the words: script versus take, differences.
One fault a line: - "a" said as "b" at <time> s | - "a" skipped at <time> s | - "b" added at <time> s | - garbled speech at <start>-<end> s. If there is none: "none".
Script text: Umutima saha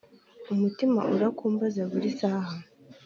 - "urakumbaza buri" added at 1.1 s